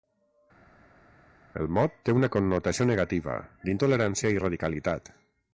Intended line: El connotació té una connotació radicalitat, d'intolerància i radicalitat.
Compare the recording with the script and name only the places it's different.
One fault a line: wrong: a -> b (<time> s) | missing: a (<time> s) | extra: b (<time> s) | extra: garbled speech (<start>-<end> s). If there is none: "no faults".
wrong: connotació -> mot (1.8 s)
wrong: radicalitat -> negativa (2.9 s)